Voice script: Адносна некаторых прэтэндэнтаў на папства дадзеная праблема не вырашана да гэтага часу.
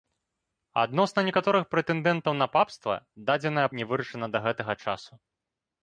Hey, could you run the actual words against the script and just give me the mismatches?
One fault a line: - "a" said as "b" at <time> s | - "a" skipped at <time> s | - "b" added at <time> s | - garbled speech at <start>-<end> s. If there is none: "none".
- "праблема" skipped at 3.7 s